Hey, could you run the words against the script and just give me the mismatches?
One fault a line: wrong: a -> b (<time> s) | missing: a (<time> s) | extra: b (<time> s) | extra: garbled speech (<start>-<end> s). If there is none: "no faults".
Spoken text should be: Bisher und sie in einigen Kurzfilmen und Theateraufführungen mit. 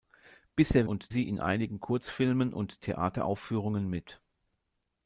no faults